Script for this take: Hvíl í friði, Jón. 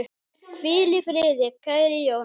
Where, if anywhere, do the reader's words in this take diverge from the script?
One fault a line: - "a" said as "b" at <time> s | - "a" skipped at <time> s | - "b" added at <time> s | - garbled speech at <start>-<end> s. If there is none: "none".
- "kæri" added at 1.6 s